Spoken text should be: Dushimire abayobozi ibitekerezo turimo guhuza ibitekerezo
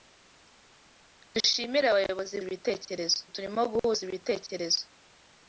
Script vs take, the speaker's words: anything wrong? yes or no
no